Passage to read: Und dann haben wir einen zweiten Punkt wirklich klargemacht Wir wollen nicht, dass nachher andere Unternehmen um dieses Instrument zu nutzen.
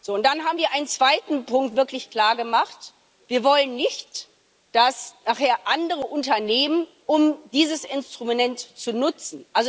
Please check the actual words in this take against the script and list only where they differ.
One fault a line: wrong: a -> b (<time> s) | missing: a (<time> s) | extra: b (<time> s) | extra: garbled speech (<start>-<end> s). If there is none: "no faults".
no faults